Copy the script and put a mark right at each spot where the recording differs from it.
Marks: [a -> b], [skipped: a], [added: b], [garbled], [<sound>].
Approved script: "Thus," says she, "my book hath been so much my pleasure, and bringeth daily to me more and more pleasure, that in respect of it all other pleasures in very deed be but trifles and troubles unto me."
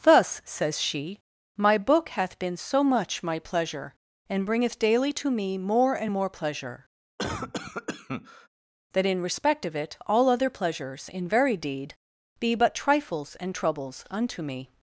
"Thus," says she, "my book hath been so much my pleasure, and bringeth daily to me more and more pleasure, [cough] that in respect of it all other pleasures in very deed be but trifles and troubles unto me."